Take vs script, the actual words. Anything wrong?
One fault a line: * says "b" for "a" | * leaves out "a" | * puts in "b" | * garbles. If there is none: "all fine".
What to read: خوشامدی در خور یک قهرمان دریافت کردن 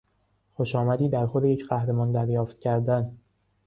all fine